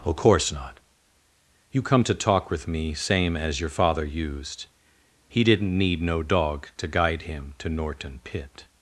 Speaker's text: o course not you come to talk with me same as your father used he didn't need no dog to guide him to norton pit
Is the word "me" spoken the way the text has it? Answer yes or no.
yes